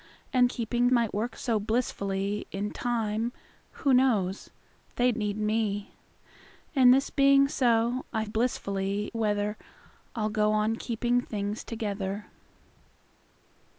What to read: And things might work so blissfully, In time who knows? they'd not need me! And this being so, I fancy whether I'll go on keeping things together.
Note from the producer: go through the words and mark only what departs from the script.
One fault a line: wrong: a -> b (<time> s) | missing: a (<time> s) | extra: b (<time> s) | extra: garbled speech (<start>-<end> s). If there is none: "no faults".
wrong: things -> keeping (0.4 s)
missing: not (5.2 s)
wrong: fancy -> blissfully (8.2 s)